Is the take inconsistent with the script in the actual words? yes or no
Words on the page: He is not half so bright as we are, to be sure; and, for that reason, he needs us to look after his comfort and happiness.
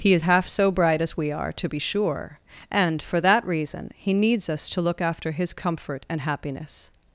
yes